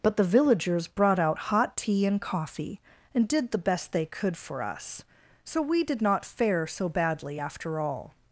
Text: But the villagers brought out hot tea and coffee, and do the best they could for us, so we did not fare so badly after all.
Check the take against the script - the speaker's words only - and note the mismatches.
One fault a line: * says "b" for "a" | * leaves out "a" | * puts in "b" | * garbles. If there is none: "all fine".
* says "did" for "do"